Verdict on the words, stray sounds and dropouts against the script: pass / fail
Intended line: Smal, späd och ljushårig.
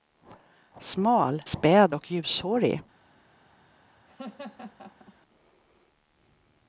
fail